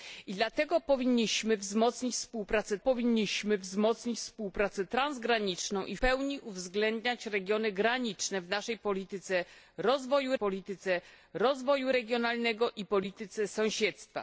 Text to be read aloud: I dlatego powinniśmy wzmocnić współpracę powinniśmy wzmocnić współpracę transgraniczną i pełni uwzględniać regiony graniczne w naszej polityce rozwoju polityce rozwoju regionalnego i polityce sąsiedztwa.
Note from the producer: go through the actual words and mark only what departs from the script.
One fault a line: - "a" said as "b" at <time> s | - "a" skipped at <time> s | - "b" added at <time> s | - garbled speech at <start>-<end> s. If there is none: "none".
none